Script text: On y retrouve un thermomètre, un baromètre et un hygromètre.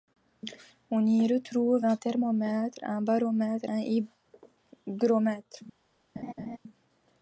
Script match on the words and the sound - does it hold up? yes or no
no